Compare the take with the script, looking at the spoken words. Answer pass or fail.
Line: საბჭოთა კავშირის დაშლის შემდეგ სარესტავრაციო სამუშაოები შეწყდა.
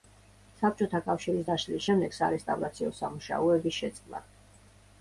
pass